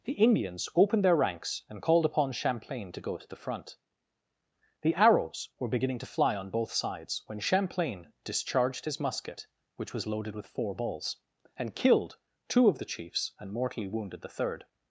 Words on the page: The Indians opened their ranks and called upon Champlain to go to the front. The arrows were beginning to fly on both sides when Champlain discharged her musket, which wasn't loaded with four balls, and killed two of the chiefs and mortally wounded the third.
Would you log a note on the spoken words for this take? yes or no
yes